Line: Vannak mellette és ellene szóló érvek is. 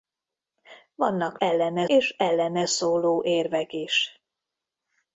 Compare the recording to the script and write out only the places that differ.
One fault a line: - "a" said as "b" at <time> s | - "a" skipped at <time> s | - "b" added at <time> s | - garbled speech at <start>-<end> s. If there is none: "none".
- "mellette" said as "ellene" at 1.4 s